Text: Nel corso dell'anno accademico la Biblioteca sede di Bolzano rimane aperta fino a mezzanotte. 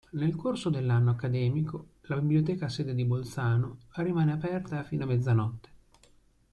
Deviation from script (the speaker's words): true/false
false